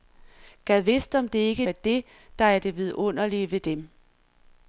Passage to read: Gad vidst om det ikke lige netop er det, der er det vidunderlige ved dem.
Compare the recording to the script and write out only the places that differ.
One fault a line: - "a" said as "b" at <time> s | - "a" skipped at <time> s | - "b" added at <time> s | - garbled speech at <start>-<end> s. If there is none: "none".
- "lige netop" skipped at 1.6 s